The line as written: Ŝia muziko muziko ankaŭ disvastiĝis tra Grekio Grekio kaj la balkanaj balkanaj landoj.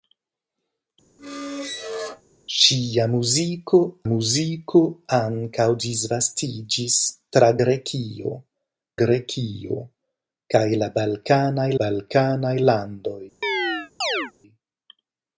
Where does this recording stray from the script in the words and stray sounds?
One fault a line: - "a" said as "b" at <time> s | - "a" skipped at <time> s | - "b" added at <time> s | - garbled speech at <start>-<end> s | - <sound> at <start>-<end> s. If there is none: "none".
- squeak at 1.2-2.2 s
- chirp at 13.4-14.3 s